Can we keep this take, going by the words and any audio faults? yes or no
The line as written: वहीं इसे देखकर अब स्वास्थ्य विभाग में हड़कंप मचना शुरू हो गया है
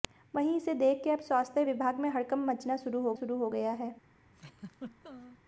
no